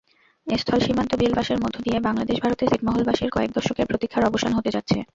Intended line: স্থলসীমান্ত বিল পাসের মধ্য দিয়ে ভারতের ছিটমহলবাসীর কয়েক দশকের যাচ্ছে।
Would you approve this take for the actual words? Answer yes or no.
no